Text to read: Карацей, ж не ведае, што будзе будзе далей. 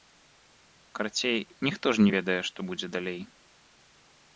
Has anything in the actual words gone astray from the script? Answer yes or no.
yes